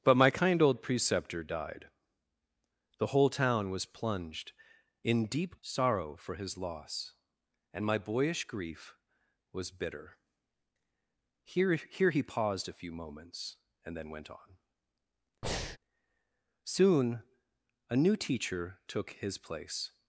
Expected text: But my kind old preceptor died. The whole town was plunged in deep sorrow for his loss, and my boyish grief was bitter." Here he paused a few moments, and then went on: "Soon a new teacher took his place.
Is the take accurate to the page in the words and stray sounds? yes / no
no